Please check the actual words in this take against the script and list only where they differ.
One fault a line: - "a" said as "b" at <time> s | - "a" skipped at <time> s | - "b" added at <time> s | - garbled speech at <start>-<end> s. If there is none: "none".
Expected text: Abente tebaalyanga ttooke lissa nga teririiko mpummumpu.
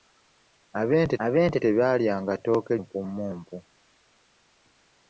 - "abente" added at 1.3 s
- "lissa nga teririiko" skipped at 2.7 s